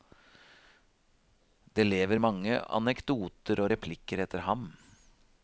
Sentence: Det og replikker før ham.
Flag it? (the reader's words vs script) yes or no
yes